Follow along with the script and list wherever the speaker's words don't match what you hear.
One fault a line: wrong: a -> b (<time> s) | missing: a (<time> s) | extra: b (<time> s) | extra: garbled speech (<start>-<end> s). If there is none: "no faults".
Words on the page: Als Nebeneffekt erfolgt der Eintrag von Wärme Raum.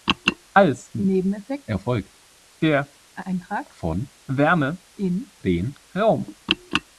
extra: in den (5.0 s)